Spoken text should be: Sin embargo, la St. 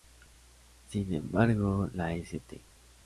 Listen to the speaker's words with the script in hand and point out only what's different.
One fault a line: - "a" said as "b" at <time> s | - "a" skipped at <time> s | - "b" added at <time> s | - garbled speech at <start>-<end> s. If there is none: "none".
none